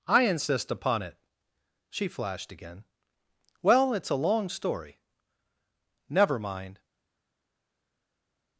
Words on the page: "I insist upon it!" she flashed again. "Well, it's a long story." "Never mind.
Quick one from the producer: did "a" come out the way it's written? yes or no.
yes